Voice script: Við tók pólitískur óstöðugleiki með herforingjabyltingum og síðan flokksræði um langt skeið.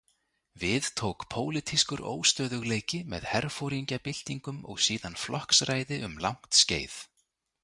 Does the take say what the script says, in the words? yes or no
yes